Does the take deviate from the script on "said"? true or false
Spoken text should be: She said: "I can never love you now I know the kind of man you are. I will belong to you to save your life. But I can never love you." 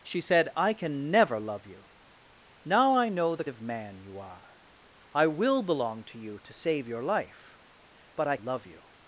false